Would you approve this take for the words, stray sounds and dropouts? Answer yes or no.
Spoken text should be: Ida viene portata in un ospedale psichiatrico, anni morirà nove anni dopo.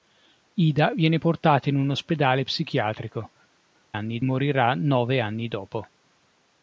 yes